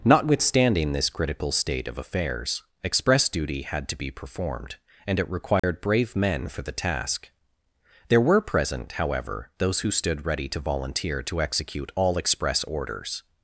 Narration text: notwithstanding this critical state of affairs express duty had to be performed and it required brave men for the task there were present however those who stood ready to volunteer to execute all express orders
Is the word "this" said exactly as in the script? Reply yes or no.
yes